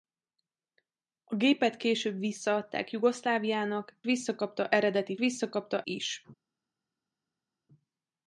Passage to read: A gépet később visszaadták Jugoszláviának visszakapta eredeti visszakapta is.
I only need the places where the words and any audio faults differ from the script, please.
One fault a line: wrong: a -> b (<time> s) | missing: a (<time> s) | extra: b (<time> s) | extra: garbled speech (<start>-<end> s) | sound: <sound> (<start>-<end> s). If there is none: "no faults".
no faults